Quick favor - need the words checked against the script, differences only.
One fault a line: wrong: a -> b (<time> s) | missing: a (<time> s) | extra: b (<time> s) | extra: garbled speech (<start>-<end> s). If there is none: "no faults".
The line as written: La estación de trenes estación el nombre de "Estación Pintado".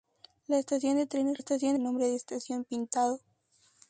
no faults